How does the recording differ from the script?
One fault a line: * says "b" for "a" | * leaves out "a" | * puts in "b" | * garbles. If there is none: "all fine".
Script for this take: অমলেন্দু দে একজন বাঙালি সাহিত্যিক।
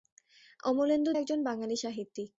* leaves out "দে"